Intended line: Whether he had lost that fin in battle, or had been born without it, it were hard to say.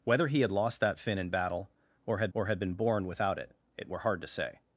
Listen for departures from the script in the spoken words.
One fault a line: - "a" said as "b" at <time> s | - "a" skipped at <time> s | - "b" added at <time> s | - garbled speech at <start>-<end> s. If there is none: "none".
- "or had" added at 2.3 s